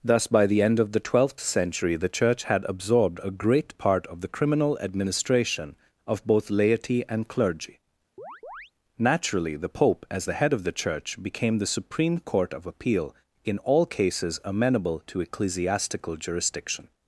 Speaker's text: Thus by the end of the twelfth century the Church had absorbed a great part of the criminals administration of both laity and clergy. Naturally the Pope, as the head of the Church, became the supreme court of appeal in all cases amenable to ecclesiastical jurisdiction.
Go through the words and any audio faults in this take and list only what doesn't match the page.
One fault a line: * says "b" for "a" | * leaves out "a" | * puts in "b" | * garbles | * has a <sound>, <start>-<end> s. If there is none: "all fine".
* says "criminal" for "criminals"
* has a chirp, 8.2-8.7 s